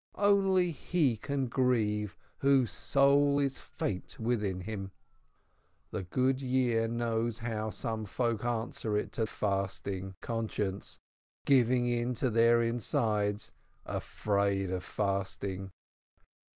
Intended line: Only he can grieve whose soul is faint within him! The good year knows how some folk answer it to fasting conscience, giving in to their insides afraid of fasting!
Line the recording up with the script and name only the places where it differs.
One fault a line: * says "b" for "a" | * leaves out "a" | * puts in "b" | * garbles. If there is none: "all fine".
all fine